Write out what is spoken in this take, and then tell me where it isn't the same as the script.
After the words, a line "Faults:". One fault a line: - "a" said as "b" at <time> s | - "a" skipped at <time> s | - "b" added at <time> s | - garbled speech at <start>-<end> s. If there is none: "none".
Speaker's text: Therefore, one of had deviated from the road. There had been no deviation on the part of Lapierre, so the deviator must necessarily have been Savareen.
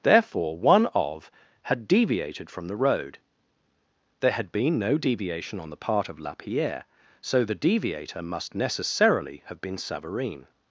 Therefore, one of had deviated from the road. There had been no deviation on the part of Lapierre, so the deviator must necessarily have been Savareen.
Faults:
none